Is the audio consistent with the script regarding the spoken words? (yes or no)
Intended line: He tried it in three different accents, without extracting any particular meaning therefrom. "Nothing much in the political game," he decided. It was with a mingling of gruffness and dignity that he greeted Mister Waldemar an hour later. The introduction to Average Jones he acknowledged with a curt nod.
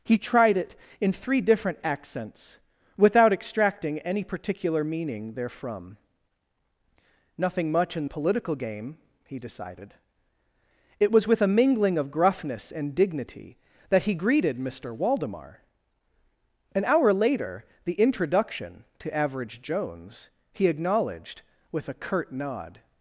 no